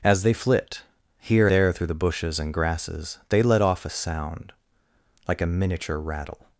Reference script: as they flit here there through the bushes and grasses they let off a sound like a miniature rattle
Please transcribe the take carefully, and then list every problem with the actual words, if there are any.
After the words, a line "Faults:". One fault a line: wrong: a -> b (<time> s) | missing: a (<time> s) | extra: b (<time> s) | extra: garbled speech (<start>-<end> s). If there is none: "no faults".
as they flit here there through the bushes and grasses they let off a sound like a miniature rattle
Faults:
no faults